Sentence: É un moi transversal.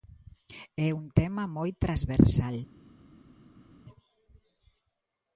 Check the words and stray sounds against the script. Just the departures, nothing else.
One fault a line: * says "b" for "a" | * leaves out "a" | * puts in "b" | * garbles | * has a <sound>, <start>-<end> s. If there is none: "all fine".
* puts in "tema"